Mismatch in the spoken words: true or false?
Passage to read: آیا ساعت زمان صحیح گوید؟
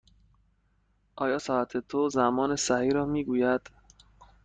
true